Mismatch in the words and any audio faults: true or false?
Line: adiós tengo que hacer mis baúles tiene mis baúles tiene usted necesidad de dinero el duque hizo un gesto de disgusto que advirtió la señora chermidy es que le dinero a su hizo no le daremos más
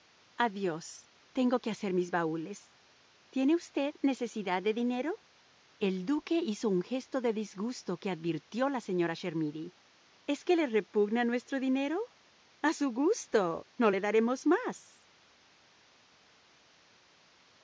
true